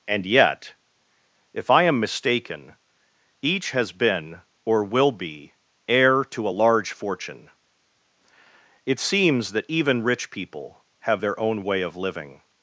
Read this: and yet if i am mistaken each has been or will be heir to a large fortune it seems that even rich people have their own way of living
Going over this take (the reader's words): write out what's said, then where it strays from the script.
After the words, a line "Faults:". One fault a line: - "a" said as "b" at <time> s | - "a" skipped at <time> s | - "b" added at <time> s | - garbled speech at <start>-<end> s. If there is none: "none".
and yet if i am mistaken each has been or will be heir to a large fortune it seems that even rich people have their own way of living
Faults:
none